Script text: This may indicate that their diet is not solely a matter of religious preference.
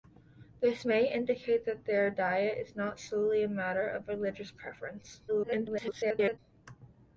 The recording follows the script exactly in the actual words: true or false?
false